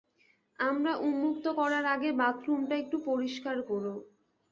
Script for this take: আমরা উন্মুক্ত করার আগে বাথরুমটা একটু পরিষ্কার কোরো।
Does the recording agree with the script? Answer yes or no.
yes